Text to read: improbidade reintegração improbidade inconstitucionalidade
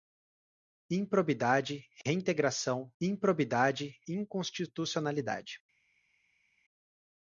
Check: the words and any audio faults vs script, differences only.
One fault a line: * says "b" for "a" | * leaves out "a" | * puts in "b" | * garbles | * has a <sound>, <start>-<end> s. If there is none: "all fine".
all fine